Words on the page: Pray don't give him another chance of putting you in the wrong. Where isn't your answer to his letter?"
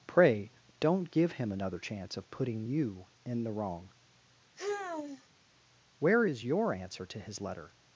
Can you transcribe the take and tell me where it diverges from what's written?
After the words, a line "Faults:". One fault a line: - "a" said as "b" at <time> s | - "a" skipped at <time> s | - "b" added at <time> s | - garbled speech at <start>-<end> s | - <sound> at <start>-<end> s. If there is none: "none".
Pray don't give him another chance of putting you in the wrong. Where is your answer to his letter?"
Faults:
- sigh at 4.6-5.3 s
- "isn't" said as "is" at 6.2 s